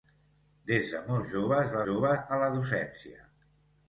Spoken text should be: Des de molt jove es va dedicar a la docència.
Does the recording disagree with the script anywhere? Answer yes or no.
yes